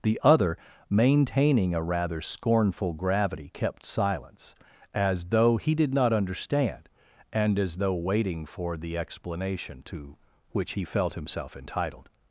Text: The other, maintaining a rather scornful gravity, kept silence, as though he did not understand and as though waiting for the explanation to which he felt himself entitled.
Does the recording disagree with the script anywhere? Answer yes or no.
no